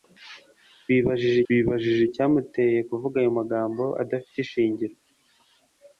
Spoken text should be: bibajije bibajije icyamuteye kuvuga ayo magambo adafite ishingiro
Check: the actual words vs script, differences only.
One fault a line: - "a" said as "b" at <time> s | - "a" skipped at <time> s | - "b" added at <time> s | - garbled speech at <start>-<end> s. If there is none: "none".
none